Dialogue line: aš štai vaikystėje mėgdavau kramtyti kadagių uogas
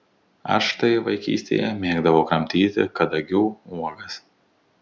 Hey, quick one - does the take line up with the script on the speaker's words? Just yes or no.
yes